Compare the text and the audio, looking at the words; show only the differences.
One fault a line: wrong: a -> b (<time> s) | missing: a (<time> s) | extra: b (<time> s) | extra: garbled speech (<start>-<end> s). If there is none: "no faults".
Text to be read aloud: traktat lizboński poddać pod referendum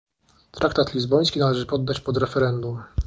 extra: należy (1.4 s)